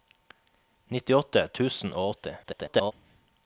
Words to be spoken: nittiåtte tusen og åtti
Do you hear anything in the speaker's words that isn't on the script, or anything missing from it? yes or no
yes